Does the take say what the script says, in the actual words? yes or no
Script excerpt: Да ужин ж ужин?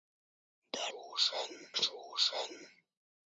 yes